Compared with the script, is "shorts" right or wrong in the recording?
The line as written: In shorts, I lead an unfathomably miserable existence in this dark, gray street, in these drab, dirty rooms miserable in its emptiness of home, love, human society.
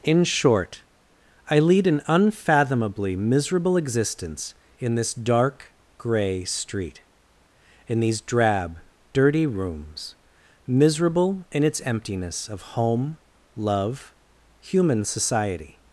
wrong